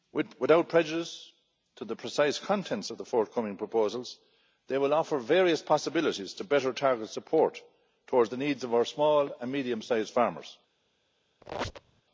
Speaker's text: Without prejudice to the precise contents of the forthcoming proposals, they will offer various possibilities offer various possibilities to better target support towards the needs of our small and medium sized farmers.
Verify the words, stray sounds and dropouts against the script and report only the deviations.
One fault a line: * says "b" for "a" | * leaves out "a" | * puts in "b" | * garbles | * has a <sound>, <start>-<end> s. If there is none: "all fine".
* leaves out "offer various possibilities"
* has a squeak, 11.4-12.0 s